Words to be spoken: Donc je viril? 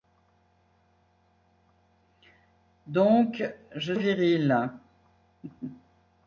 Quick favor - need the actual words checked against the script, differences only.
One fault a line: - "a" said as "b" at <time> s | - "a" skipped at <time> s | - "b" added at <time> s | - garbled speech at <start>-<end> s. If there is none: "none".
none